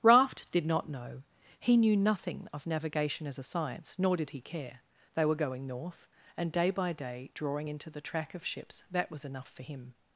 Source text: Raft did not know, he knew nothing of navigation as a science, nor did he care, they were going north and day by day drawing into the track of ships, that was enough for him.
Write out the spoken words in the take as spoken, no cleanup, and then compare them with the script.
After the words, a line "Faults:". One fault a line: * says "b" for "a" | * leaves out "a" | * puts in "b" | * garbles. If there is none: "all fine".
Raft did not know, he knew nothing of navigation as a science, nor did he care, they were going north and day by day drawing into the track of ships, that was enough for him.
Faults:
all fine